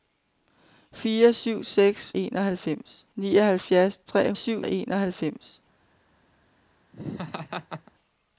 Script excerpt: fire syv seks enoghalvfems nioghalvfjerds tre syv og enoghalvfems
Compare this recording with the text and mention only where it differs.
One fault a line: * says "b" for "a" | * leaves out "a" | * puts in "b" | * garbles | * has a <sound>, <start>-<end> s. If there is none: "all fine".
* has a laugh, 6.9-7.9 s